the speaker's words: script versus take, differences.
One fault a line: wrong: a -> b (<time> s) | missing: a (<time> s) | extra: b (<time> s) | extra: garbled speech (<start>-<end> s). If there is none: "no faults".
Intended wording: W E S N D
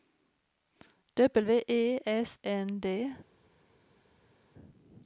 no faults